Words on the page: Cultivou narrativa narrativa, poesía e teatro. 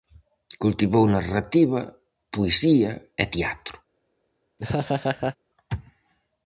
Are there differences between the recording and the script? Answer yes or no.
yes